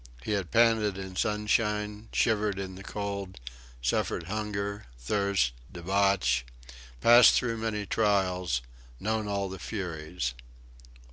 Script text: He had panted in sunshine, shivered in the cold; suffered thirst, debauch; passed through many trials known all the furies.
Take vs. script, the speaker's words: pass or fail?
fail